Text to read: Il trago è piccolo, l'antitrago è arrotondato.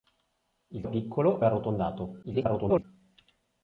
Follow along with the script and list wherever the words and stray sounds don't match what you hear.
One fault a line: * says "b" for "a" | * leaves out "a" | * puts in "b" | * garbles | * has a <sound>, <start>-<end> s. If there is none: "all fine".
* leaves out "trago"
* leaves out "l'antitrago"
* garbles